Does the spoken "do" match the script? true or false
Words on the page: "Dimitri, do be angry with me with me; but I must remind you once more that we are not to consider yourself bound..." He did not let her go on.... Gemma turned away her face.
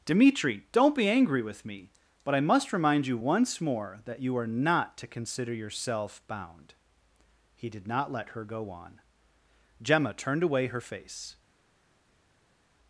false